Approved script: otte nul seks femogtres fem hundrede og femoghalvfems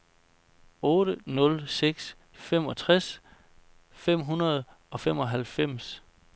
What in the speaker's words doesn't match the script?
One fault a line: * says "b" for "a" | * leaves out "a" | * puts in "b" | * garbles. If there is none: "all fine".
all fine